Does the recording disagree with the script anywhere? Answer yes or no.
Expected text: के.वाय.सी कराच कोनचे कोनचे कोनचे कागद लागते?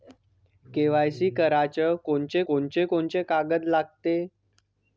no